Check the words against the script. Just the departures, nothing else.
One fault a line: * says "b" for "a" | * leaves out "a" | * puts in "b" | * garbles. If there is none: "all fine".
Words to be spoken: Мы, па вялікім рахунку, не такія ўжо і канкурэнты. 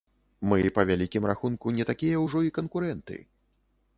all fine